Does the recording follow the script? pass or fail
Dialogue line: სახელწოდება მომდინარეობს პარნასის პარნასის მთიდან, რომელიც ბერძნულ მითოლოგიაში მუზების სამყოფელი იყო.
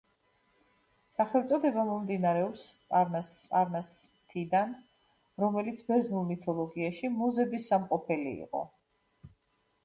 pass